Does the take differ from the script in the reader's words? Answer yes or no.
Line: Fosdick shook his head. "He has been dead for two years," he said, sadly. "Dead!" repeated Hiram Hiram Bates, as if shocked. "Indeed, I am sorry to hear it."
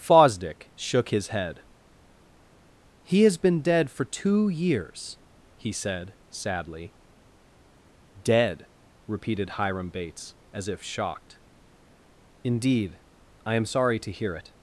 yes